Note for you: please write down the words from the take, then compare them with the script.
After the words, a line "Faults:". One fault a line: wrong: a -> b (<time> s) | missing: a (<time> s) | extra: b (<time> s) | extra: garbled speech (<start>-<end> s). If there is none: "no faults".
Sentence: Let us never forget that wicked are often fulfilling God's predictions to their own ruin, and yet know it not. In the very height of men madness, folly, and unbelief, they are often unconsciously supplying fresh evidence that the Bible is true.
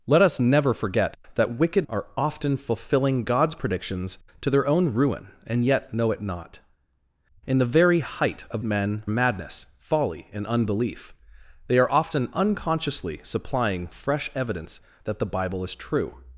Let us never forget that wicked are often fulfilling God's predictions to their own ruin, and yet know it not. In the very height of men madness, folly, and unbelief, they are often unconsciously supplying fresh evidence that the Bible is true.
Faults:
no faults